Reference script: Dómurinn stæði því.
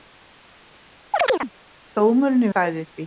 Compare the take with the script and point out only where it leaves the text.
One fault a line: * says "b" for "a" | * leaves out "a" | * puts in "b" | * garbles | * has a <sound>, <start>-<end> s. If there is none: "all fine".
* has a chirp, 1.1-1.5 s